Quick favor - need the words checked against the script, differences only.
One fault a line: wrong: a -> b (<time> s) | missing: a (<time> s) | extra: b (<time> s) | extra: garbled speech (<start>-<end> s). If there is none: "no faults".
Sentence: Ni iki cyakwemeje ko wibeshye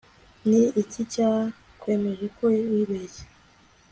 no faults